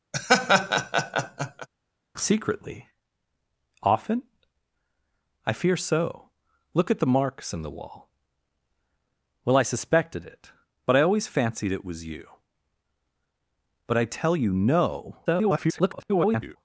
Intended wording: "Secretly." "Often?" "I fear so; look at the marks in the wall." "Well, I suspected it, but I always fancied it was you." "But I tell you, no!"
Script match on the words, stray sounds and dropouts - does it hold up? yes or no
no